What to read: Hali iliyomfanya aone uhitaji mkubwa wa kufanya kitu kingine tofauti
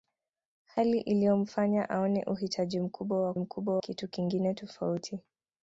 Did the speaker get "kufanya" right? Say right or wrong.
wrong